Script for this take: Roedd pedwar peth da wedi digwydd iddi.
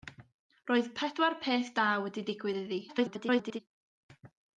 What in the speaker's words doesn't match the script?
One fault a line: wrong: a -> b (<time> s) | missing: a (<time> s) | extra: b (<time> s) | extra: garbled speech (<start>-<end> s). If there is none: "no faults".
extra: garbled speech (2.9-3.6 s)